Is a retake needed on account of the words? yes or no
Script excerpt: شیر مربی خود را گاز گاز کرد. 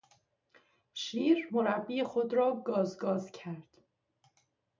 no